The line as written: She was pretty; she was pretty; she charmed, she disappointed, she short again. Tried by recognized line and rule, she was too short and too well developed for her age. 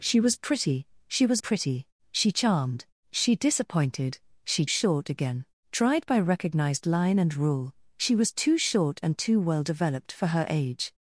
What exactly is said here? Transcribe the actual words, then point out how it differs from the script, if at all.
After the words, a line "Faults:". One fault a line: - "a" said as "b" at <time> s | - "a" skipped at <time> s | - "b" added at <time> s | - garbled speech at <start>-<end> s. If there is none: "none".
She was pretty; she was pretty; she charmed, she disappointed, she short again. Tried by recognized line and rule, she was too short and too well developed for her age.
Faults:
none